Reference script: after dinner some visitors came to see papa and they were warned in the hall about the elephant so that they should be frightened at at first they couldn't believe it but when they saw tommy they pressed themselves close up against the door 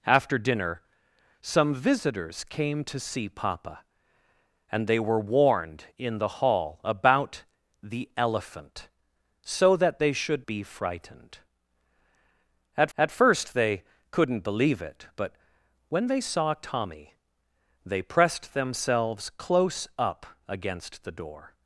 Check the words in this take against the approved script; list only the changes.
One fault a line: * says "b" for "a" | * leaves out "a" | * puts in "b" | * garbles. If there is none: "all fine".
all fine